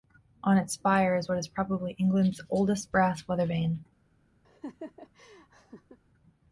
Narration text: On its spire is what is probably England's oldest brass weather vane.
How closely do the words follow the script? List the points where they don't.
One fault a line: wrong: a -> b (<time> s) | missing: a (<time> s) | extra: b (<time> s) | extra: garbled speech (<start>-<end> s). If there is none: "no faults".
no faults